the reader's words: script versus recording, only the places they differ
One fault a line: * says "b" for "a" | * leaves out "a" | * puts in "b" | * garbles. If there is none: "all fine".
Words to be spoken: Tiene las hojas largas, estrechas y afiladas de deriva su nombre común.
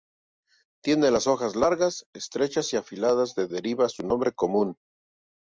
all fine